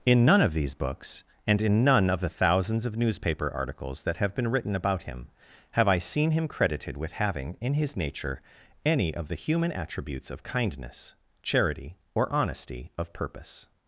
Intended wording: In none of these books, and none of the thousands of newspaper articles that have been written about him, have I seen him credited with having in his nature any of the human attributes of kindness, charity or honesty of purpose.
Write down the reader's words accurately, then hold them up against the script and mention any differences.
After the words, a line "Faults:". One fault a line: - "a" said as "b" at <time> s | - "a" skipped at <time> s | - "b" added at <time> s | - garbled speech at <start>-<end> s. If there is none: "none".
In none of these books, and in none of the thousands of newspaper articles that have been written about him, have I seen him credited with having in his nature any of the human attributes of kindness, charity or honesty of purpose.
Faults:
- "in" added at 1.6 s